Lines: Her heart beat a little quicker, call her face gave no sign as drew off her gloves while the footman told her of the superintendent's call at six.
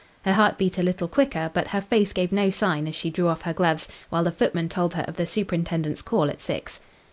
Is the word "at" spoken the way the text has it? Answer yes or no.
yes